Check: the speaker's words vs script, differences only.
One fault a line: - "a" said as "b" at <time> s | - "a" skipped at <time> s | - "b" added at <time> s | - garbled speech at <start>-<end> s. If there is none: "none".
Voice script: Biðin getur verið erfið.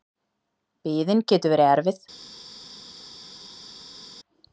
none